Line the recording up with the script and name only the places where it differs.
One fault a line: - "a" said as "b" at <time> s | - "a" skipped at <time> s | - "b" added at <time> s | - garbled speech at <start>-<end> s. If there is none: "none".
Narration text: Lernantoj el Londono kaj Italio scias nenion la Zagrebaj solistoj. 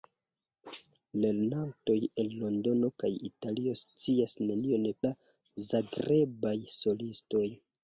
none